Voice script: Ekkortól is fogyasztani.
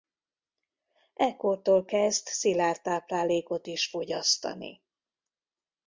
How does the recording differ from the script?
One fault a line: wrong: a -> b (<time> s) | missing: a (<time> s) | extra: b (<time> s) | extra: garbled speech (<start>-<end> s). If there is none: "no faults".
extra: kezd szilárd táplálékot (1.9 s)